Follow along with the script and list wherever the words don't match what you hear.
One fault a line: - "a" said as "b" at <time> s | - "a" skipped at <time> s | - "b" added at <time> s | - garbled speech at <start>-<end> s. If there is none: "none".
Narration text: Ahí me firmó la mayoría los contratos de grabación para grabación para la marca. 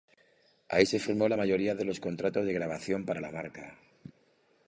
- "me" said as "se" at 0.8 s
- "de" added at 1.7 s
- "grabación para" skipped at 3.2 s